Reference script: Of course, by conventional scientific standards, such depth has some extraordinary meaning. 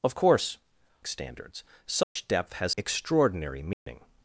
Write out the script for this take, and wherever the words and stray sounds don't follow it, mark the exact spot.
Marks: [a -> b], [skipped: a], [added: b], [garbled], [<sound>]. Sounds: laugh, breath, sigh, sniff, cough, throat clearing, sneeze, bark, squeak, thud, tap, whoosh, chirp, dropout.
Of course, [skipped: by conventional scientific] standards, such [dropout] depth has [skipped: some] extraordinary meaning. [dropout]